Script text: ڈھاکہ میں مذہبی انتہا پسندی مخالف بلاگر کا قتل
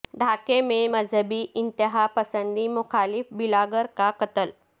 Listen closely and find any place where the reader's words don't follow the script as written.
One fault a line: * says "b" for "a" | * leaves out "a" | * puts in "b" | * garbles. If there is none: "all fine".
all fine